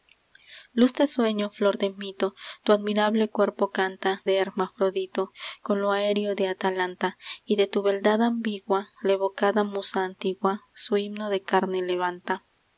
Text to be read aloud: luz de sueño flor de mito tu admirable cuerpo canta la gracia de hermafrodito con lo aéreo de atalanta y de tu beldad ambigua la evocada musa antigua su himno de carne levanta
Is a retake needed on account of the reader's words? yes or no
yes